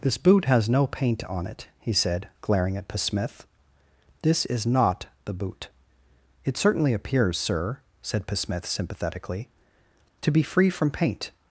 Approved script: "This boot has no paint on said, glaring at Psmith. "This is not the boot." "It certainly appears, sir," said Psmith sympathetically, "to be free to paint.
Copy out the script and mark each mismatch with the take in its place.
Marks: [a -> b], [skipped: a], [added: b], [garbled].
"This boot has no paint on [added: it he] said, glaring at Psmith. "This is not the boot." "It certainly appears, sir," said Psmith sympathetically, "to be free [to -> from] paint.